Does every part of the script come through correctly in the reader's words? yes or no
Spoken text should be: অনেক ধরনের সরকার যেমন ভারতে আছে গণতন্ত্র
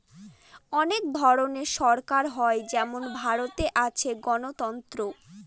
no